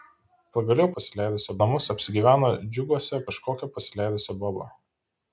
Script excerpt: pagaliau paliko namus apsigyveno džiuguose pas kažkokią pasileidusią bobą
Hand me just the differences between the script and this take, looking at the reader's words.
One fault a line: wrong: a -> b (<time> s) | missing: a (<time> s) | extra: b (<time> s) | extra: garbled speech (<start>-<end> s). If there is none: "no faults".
wrong: paliko -> pasileidusią (1.0 s)
missing: pas (3.2 s)